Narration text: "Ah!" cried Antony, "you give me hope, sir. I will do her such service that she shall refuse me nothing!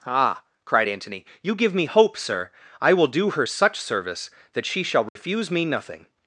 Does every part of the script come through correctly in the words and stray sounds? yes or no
no